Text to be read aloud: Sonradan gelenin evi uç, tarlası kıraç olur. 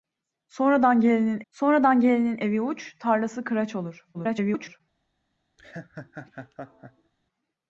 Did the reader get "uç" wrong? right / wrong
right